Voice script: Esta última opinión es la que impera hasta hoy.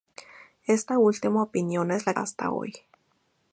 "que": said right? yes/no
no